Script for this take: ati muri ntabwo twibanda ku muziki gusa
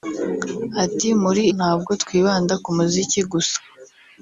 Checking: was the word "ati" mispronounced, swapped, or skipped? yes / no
no